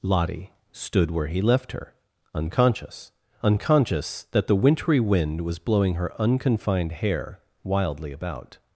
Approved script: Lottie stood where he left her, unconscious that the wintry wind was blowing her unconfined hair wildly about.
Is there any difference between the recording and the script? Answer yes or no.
yes